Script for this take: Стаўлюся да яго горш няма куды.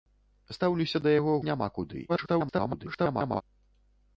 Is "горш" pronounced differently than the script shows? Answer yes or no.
yes